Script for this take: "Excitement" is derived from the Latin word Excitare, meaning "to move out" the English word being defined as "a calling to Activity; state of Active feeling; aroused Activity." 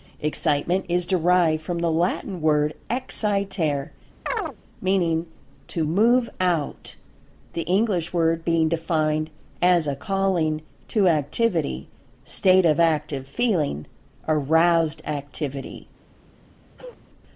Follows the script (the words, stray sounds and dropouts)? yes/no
no